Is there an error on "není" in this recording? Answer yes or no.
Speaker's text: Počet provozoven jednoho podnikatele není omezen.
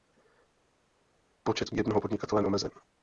yes